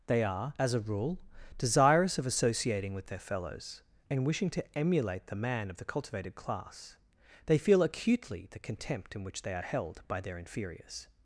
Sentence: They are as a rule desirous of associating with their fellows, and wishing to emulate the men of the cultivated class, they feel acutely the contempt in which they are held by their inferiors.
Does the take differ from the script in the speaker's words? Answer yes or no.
yes